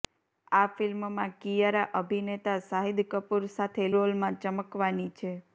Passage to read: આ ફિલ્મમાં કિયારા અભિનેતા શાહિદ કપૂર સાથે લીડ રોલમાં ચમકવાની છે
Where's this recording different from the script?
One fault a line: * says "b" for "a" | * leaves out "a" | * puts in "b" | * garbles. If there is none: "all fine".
* leaves out "લીડ"